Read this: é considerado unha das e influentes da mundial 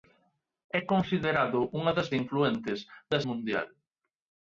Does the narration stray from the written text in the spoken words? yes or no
no